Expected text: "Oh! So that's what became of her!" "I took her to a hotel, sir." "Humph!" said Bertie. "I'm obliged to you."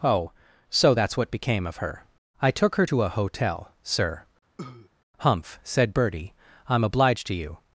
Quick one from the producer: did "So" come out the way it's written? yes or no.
yes